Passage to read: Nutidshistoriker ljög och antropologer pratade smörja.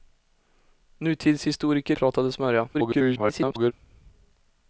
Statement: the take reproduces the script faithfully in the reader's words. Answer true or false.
false